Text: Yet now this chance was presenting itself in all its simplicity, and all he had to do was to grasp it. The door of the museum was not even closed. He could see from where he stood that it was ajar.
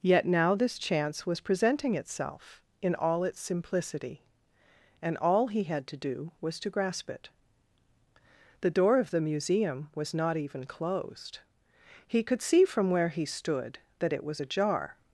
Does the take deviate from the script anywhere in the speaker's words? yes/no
no